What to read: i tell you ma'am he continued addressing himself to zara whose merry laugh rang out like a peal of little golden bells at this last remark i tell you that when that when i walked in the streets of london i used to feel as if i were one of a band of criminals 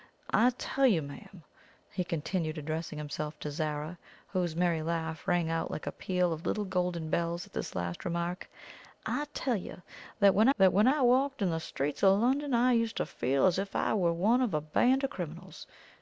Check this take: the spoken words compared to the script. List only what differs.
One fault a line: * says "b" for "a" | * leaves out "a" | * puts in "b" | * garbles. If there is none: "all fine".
all fine